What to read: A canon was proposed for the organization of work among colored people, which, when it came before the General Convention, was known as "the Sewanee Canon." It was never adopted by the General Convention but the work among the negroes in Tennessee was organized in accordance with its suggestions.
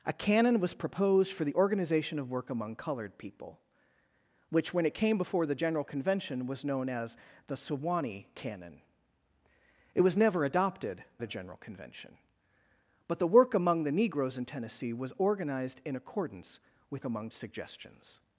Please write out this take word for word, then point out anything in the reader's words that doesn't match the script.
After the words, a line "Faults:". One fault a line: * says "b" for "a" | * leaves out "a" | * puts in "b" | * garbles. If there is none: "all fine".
A canon was proposed for the organization of work among colored people, which, when it came before the General Convention, was known as "the Sewanee Canon." It was never adopted the General Convention but the work among the negroes in Tennessee was organized in accordance with among suggestions.
Faults:
* leaves out "by"
* says "among" for "its"